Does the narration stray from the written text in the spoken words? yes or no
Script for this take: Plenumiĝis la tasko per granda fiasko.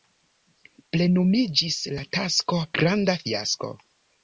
yes